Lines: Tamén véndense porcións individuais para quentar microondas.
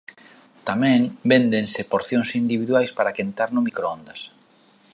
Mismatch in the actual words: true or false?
true